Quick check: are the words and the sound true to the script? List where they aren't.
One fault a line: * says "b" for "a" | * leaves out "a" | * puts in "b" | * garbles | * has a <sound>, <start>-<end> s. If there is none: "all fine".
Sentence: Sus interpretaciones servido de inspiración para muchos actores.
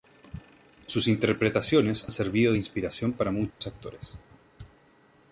* has a dropout, 3.5-3.6 s